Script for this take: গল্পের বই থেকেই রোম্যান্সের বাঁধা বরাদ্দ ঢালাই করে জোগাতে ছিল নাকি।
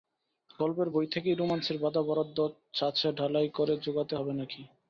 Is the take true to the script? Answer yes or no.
no